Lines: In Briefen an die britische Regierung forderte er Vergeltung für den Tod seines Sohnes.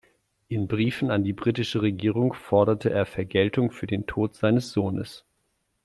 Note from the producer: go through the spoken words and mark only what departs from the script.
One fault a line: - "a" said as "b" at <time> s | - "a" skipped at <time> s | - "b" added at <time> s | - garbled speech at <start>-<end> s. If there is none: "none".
none